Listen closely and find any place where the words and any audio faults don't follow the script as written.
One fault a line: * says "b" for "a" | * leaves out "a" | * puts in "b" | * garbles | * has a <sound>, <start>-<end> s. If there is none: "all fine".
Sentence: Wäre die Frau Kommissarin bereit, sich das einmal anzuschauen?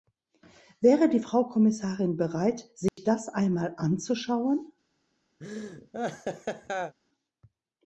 * has a dropout, 2.9-3.0 s
* has a laugh, 5.4-7.0 s